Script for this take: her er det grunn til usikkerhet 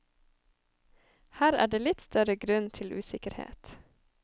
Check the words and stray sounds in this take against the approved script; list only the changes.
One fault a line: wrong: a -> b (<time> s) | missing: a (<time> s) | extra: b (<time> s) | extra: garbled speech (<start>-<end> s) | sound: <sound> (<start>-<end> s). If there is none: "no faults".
extra: litt større (1.8 s)